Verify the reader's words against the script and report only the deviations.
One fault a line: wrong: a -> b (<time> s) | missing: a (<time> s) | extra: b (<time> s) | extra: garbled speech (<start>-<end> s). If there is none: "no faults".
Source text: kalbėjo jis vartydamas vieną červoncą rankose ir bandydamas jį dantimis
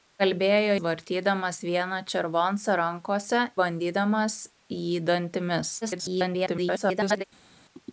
missing: jis (0.8 s)
missing: ir (3.4 s)
extra: garbled speech (5.8-7.2 s)